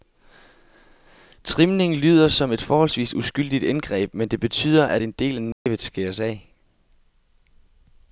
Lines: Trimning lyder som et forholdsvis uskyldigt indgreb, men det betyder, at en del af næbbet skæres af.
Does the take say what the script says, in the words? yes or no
yes